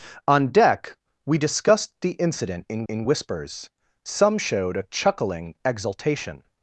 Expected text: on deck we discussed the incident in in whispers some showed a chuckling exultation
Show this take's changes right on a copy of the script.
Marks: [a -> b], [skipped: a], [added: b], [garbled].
on deck we discussed the incident in in whispers some showed a chuckling exultation